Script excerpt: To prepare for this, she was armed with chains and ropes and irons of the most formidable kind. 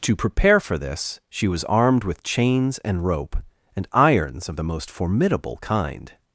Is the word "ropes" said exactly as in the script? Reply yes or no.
no